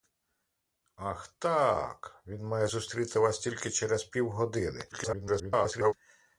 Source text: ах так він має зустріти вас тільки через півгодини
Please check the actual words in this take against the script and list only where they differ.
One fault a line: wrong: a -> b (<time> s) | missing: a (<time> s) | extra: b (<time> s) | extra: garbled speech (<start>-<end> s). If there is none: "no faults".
extra: garbled speech (4.9-5.9 s)